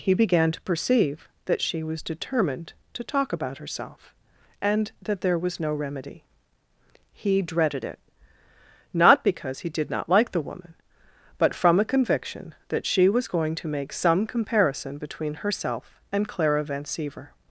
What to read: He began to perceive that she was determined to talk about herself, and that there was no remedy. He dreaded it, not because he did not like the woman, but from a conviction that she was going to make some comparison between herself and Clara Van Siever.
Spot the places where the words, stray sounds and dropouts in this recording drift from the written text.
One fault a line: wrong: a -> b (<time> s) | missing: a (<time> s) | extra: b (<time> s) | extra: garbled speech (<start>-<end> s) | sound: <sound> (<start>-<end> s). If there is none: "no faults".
no faults